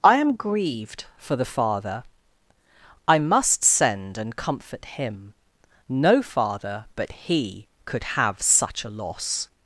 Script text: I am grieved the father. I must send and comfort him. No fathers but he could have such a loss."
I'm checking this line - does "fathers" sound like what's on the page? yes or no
no